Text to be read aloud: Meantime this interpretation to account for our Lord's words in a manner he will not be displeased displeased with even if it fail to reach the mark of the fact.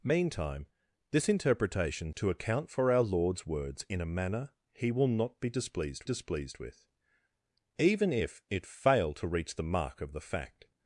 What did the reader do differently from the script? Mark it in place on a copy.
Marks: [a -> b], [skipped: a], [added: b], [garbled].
Meantime this interpretation to account for our Lord's words in a manner he will not be displeased displeased with even if it fail to reach the mark of the fact.